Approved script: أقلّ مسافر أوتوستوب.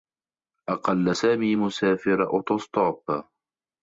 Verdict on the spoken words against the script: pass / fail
fail